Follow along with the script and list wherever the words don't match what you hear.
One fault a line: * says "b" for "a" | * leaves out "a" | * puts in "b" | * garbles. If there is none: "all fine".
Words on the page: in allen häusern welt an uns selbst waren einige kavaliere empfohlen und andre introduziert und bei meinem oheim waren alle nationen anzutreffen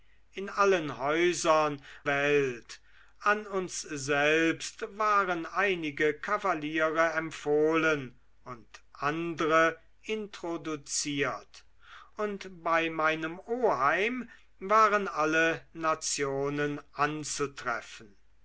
all fine